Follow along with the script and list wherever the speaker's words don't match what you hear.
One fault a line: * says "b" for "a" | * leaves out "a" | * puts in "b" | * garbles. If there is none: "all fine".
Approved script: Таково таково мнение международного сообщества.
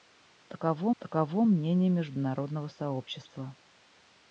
all fine